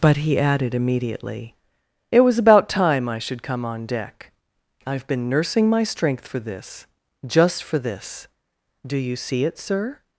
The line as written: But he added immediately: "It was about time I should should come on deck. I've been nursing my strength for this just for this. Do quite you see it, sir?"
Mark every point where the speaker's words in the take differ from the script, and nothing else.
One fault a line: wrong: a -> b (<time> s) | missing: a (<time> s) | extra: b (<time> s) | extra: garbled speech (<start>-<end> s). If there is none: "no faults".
missing: should (3.4 s)
missing: quite (9.0 s)